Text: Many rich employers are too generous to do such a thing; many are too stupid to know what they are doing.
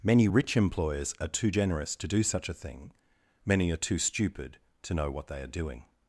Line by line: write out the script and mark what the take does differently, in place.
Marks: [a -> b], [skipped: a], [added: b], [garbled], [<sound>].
Many rich employers are too generous to do such a thing; many are too stupid to know what they are doing.